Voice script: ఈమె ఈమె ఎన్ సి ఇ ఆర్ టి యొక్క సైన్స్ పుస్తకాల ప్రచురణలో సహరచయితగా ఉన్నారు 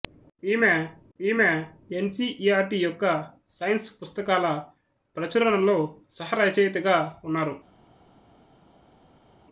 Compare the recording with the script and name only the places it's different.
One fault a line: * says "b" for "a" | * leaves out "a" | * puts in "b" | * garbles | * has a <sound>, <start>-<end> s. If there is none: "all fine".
all fine